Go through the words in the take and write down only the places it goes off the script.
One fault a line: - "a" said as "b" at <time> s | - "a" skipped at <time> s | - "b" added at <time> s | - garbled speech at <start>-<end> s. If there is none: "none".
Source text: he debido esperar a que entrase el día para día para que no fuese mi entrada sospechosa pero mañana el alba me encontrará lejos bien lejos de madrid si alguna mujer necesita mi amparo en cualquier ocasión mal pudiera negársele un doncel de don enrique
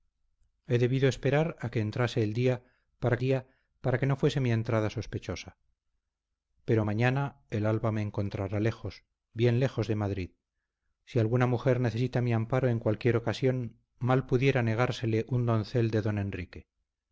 none